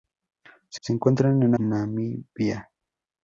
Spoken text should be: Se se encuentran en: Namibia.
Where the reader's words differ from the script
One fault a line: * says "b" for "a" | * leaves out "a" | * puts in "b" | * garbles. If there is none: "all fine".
all fine